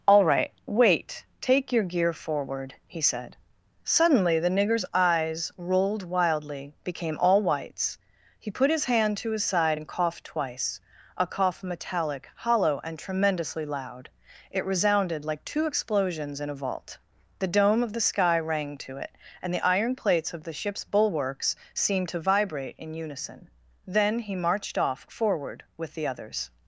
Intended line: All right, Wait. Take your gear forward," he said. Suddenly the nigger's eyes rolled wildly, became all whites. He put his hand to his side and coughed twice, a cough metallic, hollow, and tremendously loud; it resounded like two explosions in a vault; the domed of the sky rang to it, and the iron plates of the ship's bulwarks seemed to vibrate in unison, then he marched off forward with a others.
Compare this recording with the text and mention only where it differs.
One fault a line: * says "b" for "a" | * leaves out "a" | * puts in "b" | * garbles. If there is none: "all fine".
* says "dome" for "domed"
* says "the" for "a"